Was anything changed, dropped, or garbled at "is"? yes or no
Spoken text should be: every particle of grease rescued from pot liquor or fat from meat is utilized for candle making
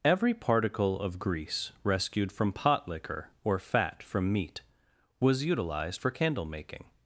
yes